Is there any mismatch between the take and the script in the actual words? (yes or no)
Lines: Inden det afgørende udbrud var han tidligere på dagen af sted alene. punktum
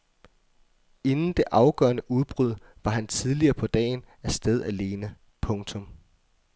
no